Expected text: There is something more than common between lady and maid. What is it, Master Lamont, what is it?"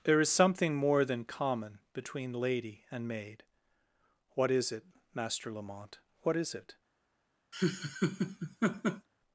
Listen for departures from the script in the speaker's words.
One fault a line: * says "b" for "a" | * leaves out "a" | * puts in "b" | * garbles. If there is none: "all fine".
all fine